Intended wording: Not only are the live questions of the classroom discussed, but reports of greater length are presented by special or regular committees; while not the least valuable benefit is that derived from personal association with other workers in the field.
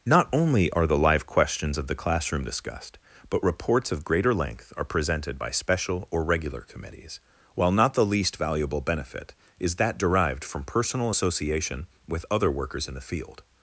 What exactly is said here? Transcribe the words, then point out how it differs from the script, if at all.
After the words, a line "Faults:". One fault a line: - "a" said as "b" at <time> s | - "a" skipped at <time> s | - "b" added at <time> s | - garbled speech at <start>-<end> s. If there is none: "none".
Not only are the live questions of the classroom discussed, but reports of greater length are presented by special or regular committees; while not the least valuable benefit is that derived from personal association with other workers in the field.
Faults:
none